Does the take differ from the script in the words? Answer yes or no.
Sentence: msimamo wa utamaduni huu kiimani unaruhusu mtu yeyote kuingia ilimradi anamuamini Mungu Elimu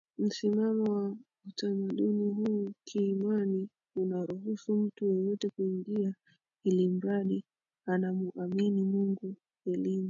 no